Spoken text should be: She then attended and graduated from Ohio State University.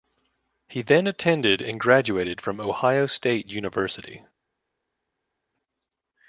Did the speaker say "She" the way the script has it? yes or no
no